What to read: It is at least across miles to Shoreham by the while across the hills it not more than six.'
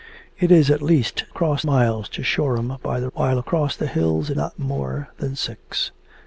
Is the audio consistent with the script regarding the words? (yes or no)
yes